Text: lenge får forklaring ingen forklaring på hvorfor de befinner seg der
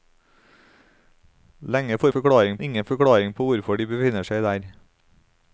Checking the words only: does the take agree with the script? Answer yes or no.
yes